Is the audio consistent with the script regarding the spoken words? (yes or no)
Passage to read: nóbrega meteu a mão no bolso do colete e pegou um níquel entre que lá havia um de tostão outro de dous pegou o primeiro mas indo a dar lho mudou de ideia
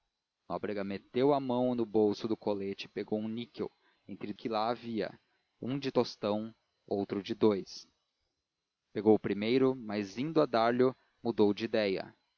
yes